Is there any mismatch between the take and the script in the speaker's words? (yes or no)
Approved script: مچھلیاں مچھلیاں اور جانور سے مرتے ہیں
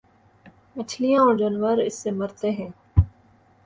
yes